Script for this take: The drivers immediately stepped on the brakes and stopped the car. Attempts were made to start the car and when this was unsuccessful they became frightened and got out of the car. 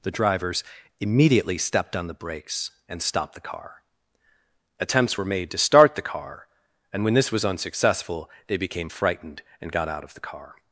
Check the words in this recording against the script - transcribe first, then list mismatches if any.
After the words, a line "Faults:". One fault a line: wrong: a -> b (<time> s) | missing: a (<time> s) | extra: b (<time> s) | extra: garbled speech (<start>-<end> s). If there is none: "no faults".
The drivers immediately stepped on the brakes and stopped the car. Attempts were made to start the car and when this was unsuccessful they became frightened and got out of the car.
Faults:
no faults